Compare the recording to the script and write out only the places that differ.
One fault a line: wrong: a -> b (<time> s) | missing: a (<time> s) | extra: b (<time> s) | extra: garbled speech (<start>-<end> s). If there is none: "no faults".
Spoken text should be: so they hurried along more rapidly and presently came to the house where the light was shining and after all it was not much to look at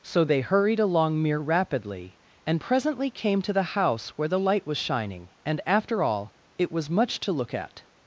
wrong: more -> mere (1.2 s)
missing: not (6.9 s)